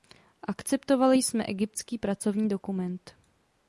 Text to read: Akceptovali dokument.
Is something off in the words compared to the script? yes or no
yes